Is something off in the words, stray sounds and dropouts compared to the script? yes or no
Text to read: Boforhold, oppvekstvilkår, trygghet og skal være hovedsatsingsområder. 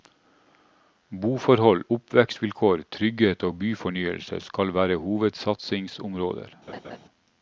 yes